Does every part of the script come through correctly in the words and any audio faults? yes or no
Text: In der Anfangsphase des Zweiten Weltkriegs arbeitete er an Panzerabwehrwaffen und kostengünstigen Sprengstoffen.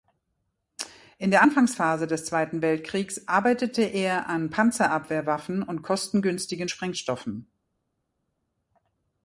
yes